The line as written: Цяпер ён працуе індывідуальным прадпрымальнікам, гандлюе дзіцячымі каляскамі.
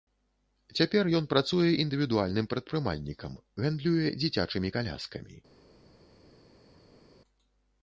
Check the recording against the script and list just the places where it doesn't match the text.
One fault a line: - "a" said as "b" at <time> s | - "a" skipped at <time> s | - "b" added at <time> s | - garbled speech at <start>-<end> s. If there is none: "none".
none